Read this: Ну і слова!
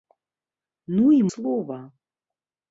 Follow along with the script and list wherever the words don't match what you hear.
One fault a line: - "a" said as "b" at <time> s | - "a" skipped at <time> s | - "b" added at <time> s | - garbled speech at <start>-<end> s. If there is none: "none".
none